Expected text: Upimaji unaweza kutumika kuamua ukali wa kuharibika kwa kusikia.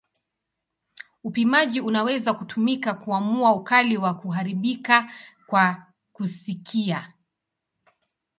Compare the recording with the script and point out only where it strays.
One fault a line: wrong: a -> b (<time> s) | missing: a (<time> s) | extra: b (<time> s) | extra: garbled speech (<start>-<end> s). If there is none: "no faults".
no faults